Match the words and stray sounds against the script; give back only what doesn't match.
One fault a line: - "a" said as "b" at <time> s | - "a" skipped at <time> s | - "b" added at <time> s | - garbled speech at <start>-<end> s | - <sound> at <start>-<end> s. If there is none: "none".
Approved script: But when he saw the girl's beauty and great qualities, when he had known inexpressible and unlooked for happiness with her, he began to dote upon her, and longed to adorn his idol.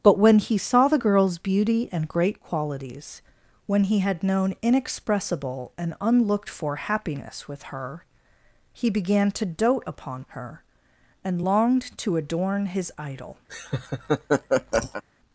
- laugh at 13.5-15.0 s